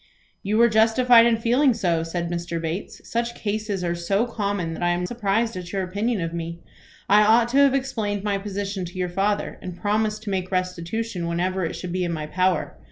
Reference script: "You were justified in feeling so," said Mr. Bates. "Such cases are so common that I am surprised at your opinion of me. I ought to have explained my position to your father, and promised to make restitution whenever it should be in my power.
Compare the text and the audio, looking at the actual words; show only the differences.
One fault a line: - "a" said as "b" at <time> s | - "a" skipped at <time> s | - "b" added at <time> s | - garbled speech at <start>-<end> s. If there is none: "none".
none